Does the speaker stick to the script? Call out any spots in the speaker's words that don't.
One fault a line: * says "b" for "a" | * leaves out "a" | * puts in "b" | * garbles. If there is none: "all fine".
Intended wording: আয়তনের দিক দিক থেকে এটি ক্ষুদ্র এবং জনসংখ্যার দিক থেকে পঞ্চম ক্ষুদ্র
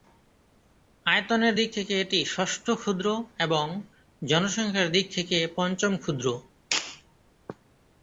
* leaves out "দিক"
* puts in "ষষ্ঠ"